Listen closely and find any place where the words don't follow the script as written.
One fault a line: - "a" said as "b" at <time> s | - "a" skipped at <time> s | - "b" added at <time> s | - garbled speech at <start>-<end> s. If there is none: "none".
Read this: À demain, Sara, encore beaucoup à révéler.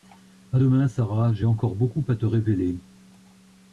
- "j'ai" added at 1.3 s
- "te" added at 2.1 s